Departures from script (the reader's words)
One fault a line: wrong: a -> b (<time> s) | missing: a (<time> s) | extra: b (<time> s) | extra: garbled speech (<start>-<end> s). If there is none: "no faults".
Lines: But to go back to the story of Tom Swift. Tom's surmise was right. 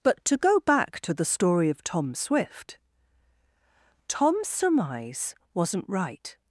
wrong: was -> wasn't (5.5 s)